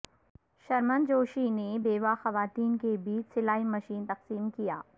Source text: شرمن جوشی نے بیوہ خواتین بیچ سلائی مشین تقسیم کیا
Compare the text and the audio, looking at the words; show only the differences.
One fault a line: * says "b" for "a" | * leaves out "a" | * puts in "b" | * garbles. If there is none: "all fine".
* puts in "کے"